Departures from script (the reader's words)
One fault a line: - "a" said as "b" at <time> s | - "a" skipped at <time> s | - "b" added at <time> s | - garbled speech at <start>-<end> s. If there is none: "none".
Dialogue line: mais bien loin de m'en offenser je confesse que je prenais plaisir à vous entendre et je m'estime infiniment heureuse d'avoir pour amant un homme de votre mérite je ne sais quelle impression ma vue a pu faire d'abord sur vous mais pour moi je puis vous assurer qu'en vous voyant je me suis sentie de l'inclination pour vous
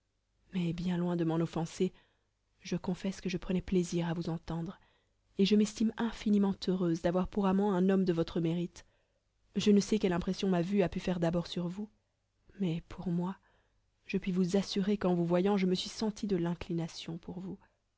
none